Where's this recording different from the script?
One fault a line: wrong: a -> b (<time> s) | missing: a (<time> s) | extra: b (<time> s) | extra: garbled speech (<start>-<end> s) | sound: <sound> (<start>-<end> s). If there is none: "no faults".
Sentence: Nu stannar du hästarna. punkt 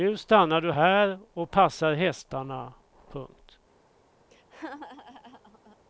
extra: här och passar (0.7 s)
sound: laugh (4.3-5.8 s)